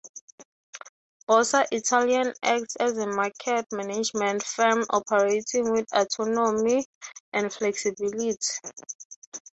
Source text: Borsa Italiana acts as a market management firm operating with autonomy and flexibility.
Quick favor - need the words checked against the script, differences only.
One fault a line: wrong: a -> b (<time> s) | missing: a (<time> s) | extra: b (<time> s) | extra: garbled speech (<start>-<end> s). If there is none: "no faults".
no faults